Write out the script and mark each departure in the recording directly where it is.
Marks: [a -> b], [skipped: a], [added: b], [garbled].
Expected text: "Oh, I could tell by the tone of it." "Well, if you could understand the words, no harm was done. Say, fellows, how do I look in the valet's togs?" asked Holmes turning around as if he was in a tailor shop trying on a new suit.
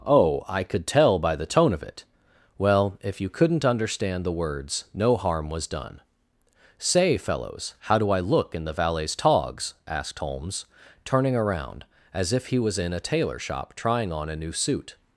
"Oh, I could tell by the tone of it." "Well, if you [could -> couldn't] understand the words, no harm was done. Say, fellows, how do I look in the valet's togs?" asked Holmes turning around as if he was in a tailor shop trying on a new suit.